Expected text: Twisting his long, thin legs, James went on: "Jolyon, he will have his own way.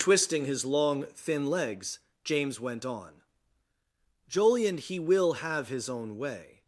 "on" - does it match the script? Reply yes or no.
yes